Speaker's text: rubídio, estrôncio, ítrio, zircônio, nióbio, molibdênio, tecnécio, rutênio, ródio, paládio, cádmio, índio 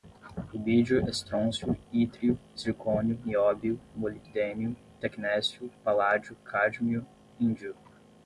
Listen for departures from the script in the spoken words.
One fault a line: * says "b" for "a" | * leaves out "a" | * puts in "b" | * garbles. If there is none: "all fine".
* leaves out "rutênio ródio"